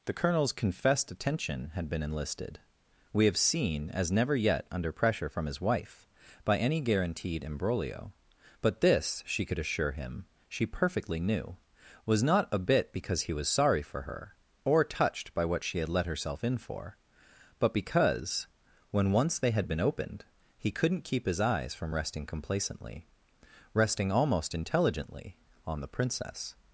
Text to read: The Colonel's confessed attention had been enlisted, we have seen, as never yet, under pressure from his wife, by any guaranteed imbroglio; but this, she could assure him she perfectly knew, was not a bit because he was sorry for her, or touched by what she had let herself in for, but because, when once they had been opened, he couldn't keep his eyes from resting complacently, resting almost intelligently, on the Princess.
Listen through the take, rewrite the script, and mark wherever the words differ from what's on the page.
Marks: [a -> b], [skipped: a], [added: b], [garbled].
The Colonel's confessed attention had been enlisted, we have seen, as never yet, under pressure from his wife, by any guaranteed imbroglio; but this, she could assure him she perfectly knew, was not a bit because he was sorry for her, or touched by what she had let herself in for, but because, when once they had been opened, he couldn't keep his eyes from resting complacently, resting almost intelligently, on the Princess.